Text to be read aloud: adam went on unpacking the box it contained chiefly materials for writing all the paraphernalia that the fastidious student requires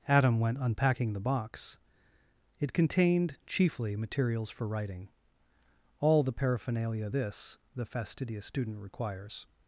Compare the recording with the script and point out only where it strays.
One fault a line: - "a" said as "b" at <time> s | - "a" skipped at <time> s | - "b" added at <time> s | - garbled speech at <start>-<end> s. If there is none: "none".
- "on" skipped at 0.6 s
- "that" said as "this" at 7.1 s